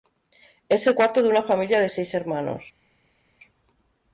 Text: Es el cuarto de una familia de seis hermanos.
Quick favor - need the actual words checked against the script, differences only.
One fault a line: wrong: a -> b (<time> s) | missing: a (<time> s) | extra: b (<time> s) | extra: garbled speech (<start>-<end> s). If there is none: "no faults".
no faults